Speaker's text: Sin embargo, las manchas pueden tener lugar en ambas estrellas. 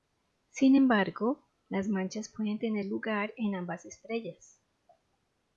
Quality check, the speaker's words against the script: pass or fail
pass